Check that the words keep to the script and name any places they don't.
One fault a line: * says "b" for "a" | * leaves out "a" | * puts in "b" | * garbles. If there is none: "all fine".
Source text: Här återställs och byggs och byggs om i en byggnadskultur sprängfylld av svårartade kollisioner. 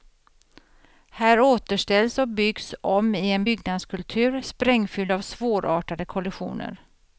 * leaves out "och byggs"